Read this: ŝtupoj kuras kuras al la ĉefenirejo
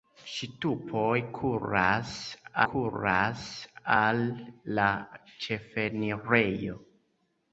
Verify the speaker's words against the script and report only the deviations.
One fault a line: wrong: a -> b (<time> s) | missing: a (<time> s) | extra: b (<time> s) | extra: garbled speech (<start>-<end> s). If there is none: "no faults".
no faults